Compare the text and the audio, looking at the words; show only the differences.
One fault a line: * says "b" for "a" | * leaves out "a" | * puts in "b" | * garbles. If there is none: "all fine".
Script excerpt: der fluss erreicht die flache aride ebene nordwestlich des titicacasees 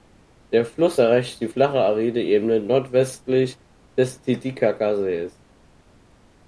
all fine